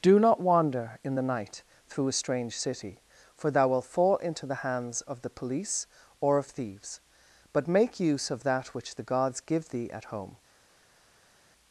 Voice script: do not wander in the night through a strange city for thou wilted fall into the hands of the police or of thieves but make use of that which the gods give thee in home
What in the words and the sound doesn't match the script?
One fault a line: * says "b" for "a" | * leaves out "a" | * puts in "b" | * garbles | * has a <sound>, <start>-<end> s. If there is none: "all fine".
* says "wilt" for "wilted"
* says "at" for "in"